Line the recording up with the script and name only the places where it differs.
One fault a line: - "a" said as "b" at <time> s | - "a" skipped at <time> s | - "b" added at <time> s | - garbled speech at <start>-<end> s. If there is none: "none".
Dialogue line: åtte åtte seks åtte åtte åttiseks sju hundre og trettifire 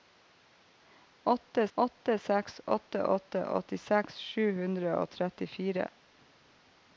none